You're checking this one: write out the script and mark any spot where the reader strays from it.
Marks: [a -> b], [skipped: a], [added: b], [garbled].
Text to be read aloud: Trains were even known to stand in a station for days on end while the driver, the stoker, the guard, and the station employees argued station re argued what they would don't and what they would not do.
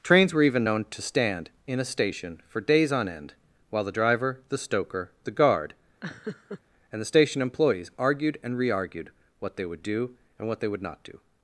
Trains were even known to stand in a station for days on end while the driver, the stoker, the guard, and the station employees argued [station -> and] re argued what they would [don't -> do] and what they would not do.